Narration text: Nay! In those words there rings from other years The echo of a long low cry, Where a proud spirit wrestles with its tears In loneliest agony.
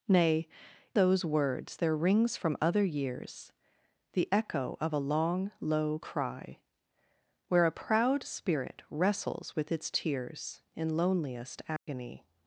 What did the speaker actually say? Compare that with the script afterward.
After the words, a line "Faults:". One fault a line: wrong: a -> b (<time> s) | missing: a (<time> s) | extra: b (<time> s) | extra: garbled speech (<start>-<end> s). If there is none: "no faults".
Nay! Those words there rings from other years The echo of a long low cry, Where a proud spirit wrestles with its tears In loneliest agony.
Faults:
missing: In (0.5 s)